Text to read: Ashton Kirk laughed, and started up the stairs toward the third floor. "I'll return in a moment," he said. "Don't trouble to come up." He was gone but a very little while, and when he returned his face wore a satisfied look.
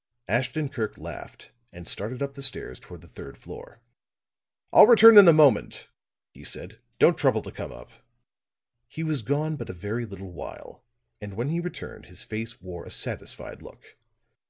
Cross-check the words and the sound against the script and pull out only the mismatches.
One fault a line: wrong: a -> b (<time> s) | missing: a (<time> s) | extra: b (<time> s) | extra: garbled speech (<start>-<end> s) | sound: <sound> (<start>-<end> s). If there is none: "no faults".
no faults